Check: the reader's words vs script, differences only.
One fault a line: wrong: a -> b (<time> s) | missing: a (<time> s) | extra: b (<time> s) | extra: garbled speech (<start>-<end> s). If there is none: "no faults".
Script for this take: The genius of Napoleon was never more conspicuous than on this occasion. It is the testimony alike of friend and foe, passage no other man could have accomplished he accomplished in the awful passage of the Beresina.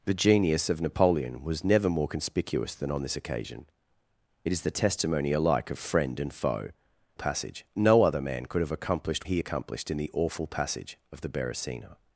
no faults